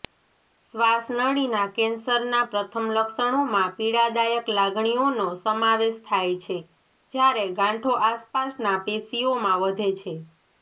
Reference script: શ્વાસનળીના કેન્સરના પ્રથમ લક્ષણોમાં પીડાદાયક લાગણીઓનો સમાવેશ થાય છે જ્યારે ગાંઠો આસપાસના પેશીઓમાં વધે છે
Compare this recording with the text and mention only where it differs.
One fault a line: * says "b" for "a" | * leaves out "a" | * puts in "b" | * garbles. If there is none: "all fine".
all fine